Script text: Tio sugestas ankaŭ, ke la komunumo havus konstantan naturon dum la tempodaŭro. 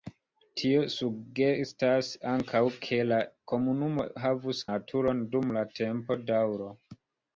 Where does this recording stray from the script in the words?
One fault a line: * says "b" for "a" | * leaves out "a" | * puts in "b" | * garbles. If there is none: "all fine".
* leaves out "konstantan"